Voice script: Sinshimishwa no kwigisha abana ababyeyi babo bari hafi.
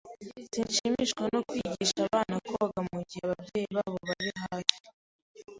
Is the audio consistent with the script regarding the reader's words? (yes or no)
no